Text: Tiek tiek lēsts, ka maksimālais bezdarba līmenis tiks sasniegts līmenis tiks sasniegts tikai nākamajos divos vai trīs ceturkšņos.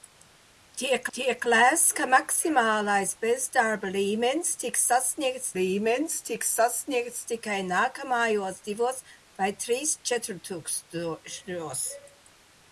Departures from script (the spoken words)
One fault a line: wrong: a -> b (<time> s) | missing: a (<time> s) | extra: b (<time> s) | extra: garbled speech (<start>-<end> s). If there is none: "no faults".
no faults